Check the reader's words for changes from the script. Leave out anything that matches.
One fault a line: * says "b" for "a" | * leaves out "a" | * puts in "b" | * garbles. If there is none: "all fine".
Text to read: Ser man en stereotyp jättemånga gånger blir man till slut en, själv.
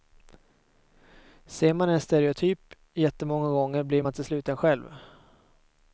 all fine